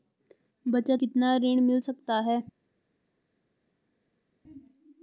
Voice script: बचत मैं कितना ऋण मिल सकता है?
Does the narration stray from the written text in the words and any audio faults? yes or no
yes